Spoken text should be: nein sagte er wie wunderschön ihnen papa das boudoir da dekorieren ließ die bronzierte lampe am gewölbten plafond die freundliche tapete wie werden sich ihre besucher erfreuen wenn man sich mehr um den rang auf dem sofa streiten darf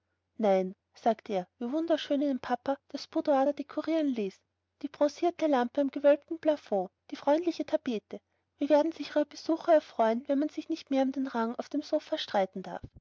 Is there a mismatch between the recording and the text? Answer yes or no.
yes